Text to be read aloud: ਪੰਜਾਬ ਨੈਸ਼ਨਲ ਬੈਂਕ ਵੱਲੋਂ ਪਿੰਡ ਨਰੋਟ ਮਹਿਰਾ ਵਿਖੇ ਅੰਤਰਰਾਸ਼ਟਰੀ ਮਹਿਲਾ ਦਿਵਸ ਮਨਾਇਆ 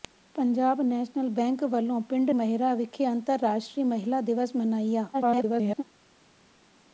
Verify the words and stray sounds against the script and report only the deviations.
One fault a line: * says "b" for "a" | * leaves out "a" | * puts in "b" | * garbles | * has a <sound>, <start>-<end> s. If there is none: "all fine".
* leaves out "ਨਰੋਟ"
* garbles